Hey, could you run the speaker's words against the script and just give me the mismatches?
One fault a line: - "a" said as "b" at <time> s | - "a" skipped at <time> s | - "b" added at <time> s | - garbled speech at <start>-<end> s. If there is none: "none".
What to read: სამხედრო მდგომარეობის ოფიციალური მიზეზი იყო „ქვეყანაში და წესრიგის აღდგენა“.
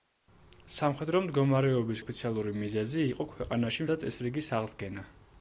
none